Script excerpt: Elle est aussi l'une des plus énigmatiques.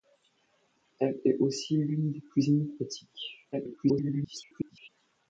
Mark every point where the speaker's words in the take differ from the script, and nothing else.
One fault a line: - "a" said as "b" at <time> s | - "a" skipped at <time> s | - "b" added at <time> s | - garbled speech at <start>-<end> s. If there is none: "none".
- garbled speech at 3.5-4.9 s